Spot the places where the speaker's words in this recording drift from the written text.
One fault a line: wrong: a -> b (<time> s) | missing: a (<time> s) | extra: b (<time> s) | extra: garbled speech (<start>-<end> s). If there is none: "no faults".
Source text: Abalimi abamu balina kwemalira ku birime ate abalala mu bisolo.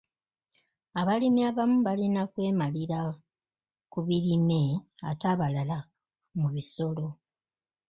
no faults